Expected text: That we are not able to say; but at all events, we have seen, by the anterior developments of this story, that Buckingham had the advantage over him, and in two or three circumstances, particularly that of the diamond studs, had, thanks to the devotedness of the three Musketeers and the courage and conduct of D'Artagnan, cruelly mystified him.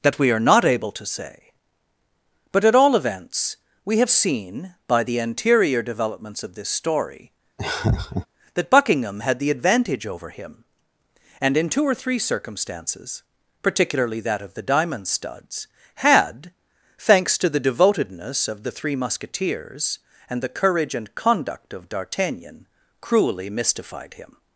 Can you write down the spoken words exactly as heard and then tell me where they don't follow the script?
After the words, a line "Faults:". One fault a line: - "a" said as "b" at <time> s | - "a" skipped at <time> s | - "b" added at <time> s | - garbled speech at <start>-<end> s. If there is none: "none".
That we are not able to say; but at all events, we have seen, by the anterior developments of this story, that Buckingham had the advantage over him, and in two or three circumstances, particularly that of the diamond studs, had, thanks to the devotedness of the three Musketeers and the courage and conduct of D'Artagnan, cruelly mystified him.
Faults:
none